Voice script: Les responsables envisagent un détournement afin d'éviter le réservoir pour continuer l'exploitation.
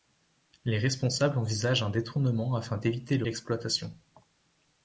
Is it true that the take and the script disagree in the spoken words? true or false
true